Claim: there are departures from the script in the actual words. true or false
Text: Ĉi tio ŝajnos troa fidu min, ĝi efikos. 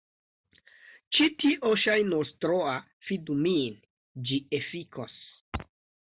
false